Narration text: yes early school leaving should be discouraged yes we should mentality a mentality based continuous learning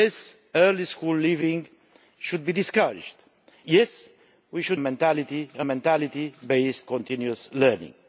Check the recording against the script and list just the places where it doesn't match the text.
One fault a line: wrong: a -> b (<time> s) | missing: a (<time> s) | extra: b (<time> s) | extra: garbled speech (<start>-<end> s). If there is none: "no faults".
no faults